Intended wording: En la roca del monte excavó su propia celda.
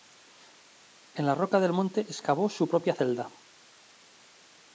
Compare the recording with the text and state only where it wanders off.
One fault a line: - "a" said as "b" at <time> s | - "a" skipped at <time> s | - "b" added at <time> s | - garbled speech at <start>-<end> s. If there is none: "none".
none